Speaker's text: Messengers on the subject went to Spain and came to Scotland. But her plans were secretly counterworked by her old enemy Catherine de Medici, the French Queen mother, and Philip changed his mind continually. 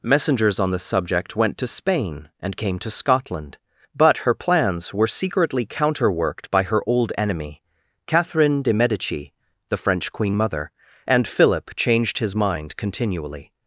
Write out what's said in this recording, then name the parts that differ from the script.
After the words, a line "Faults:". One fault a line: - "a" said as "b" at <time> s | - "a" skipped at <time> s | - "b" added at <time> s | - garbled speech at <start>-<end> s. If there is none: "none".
Messengers on the subject went to Spain and came to Scotland. But her plans were secretly counterworked by her old enemy Catherine de Medici, the French Queen mother, and Philip changed his mind continually.
Faults:
none